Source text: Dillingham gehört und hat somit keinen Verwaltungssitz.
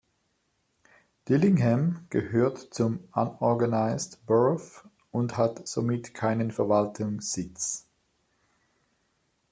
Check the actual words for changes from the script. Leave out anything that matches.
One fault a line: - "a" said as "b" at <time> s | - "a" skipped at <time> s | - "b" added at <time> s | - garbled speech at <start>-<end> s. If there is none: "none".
- "zum Unorganized Borough" added at 2.7 s